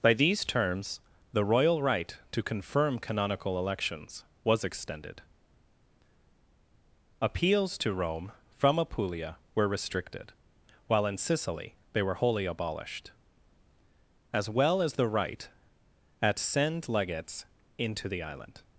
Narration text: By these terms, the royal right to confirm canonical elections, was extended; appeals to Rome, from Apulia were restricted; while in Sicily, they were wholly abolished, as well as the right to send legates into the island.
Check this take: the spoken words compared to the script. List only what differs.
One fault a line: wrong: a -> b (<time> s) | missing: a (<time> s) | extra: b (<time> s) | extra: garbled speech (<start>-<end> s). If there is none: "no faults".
wrong: to -> at (16.2 s)